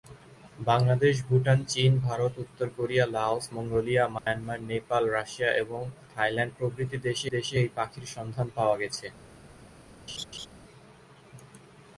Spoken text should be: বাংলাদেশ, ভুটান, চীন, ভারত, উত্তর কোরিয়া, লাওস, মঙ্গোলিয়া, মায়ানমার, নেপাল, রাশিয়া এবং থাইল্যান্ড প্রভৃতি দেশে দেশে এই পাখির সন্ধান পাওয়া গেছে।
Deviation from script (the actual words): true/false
false